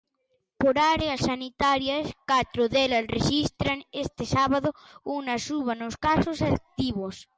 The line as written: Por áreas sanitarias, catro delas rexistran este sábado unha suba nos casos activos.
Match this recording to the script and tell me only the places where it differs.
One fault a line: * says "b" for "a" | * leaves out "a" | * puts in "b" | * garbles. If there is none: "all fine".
all fine